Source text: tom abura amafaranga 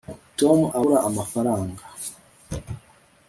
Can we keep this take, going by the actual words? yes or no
yes